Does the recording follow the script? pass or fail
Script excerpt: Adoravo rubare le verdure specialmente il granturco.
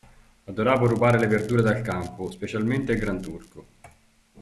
fail